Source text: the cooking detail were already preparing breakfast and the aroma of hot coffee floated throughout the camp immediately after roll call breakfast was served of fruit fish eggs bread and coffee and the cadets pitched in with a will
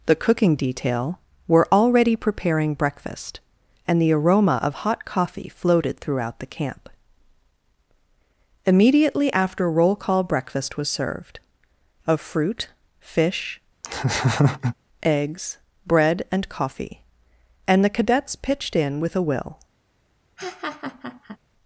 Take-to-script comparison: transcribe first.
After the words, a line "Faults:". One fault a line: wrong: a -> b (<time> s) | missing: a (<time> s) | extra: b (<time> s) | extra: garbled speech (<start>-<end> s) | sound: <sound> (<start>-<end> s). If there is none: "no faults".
the cooking detail were already preparing breakfast and the aroma of hot coffee floated throughout the camp immediately after roll call breakfast was served of fruit fish eggs bread and coffee and the cadets pitched in with a will
Faults:
sound: laugh (13.8-14.7 s)
sound: laugh (20.4-21.4 s)